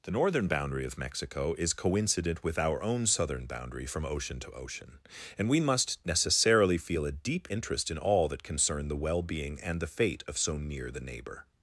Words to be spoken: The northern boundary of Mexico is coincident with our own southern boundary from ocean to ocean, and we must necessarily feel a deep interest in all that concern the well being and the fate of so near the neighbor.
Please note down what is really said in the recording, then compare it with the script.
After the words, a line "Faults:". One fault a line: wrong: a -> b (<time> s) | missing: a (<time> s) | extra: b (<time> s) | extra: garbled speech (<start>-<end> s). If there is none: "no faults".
The northern boundary of Mexico is coincident with our own southern boundary from ocean to ocean, and we must necessarily feel a deep interest in all that concern the well being and the fate of so near the neighbor.
Faults:
no faults